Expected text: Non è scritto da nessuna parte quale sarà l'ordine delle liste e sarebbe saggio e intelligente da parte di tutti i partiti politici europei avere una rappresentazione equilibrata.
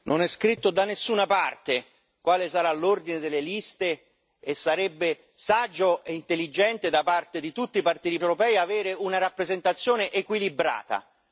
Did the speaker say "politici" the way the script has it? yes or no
no